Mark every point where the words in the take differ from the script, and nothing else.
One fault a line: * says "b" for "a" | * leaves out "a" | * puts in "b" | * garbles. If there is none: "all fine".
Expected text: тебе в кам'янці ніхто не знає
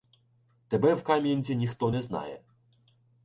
all fine